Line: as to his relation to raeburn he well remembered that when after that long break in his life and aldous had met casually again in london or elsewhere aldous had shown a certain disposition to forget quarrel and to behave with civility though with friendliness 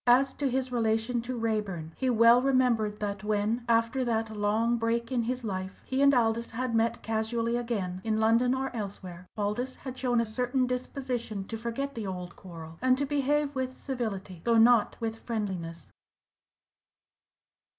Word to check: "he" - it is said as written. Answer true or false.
true